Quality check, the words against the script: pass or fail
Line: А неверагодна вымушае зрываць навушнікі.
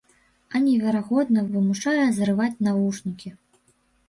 pass